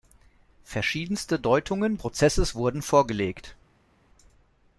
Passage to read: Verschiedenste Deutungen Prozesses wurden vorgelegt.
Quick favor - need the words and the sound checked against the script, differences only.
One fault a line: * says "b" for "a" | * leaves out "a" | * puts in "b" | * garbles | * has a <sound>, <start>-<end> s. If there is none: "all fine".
all fine